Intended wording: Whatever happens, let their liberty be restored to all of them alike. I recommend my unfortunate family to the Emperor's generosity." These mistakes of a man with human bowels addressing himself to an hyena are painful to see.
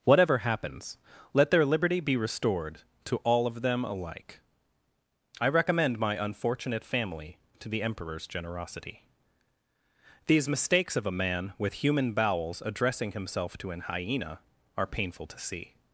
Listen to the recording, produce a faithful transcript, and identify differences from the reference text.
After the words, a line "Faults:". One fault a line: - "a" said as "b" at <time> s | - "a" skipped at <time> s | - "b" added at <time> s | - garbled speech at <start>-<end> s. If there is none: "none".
Whatever happens, let their liberty be restored to all of them alike. I recommend my unfortunate family to the Emperor's generosity." These mistakes of a man with human bowels addressing himself to an hyena are painful to see.
Faults:
none